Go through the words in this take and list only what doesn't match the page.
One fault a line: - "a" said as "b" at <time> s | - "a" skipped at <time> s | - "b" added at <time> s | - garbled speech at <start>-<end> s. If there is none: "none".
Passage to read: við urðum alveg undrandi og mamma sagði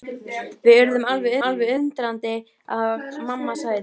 - "alveg" added at 1.5 s